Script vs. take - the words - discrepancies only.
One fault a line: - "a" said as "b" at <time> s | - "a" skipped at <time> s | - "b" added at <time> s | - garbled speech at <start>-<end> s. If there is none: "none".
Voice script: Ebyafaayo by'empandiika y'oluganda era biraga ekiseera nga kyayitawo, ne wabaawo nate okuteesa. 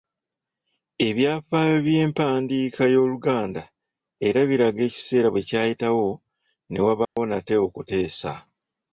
- "nga" said as "bwe" at 5.3 s